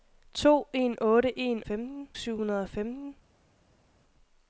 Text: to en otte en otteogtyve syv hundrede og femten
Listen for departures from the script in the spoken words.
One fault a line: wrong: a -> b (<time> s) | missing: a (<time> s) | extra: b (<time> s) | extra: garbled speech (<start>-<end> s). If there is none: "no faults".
wrong: otteogtyve -> femten (1.6 s)